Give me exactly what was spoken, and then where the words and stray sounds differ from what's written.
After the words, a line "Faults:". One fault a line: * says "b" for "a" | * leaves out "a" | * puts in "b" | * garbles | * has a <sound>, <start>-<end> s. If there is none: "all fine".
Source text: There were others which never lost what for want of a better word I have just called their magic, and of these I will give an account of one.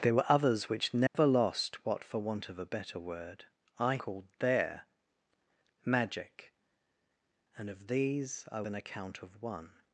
There were others which never lost what for want of a better word I called their magic, and of these I an account of one.
Faults:
* has a dropout, 1.1-1.1 s
* leaves out "have just"
* leaves out "will give"